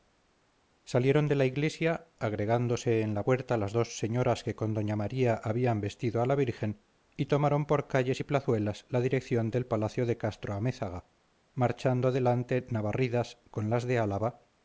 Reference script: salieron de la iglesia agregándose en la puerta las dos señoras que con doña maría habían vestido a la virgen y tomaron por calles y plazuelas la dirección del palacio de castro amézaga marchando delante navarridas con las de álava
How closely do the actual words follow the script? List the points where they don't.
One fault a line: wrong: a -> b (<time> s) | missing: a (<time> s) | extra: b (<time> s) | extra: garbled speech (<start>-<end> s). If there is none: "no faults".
no faults